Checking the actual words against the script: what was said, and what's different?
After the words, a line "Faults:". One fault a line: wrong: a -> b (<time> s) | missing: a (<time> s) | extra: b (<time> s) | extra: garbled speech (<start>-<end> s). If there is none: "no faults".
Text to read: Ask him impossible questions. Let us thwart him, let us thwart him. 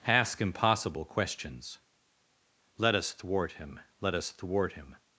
Ask impossible questions. Let us thwart him, let us thwart him.
Faults:
missing: him (0.4 s)